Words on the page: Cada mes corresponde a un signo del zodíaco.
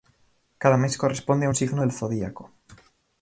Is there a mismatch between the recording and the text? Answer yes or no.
no